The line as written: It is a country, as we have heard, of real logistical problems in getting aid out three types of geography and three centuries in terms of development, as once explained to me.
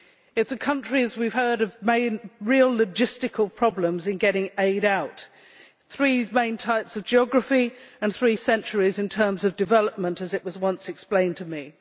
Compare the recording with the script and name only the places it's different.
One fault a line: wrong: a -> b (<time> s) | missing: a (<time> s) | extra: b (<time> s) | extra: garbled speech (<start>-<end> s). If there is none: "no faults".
extra: main (6.3 s)
extra: was (10.4 s)